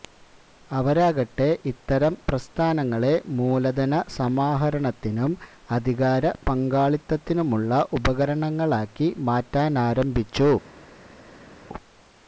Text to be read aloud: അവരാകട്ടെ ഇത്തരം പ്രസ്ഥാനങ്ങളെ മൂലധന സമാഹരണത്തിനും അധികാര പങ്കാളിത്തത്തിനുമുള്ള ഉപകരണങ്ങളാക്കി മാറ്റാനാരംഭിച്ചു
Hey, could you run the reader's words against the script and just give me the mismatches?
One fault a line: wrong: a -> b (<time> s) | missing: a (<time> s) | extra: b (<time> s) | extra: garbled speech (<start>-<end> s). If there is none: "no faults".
no faults